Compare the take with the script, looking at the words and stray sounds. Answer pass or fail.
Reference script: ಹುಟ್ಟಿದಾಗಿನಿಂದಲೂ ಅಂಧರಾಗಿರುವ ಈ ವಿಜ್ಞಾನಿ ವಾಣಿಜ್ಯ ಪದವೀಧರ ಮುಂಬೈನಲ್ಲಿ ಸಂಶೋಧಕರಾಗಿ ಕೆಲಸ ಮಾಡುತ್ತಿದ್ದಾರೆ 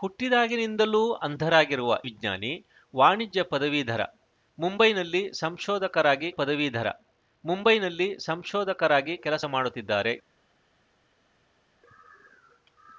fail